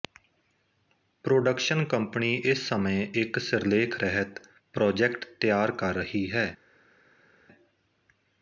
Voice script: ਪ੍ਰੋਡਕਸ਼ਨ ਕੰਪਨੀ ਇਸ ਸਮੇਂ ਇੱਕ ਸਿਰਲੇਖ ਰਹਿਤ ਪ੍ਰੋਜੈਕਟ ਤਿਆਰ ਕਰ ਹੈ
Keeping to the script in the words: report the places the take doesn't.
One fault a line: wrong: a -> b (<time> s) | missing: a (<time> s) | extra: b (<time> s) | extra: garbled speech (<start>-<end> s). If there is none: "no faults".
extra: ਰਹੀ (6.0 s)